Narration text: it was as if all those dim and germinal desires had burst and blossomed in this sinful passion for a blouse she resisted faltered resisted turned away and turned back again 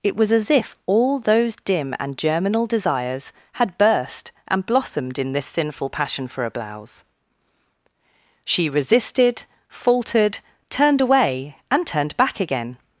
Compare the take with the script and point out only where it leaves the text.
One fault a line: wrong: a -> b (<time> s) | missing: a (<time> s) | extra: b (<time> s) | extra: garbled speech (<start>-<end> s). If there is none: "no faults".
missing: resisted (10.4 s)